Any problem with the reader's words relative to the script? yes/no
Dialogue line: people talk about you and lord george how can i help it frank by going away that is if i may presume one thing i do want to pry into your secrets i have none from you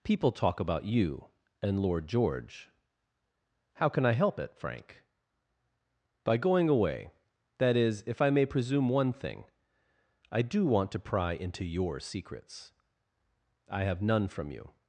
no